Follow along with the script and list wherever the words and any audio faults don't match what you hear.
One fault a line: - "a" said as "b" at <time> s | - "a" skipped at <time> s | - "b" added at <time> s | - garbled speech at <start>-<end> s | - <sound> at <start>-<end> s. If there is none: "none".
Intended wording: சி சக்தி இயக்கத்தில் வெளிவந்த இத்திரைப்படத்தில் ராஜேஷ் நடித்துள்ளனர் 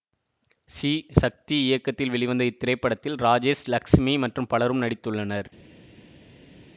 - "லக்ஸ்மி மற்றும் பலரும்" added at 3.7 s